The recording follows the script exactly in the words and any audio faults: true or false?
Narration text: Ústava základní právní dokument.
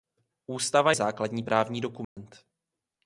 false